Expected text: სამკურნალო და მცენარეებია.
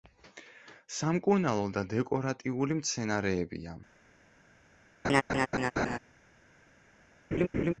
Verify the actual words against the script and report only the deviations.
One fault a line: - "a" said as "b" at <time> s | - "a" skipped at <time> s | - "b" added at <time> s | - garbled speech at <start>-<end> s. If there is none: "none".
- "დეკორატიული" added at 1.9 s